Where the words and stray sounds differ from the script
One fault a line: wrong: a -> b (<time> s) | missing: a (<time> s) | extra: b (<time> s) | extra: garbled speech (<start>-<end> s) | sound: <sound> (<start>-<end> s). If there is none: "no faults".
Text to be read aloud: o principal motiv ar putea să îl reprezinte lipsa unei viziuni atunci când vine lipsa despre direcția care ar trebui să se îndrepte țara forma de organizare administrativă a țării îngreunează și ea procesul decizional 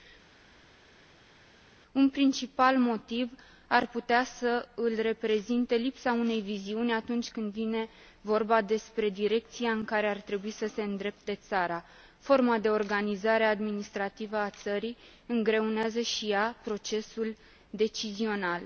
wrong: o -> un (1.9 s)
wrong: lipsa -> vorba (8.2 s)
extra: în (9.7 s)